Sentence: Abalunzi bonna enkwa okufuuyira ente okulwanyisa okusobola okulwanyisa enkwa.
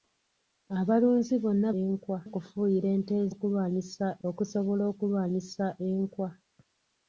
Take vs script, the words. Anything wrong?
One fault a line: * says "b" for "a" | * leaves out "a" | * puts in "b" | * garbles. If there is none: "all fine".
all fine